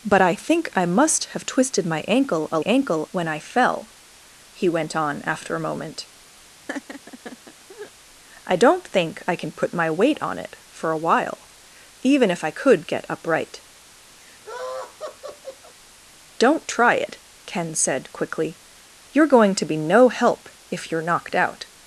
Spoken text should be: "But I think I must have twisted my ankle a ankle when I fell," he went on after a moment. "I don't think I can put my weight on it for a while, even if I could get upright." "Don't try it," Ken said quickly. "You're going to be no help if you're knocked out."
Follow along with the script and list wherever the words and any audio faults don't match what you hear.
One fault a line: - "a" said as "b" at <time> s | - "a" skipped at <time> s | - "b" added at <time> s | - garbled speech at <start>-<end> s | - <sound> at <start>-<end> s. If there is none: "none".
- laugh at 6.7-7.9 s
- laugh at 14.2-15.8 s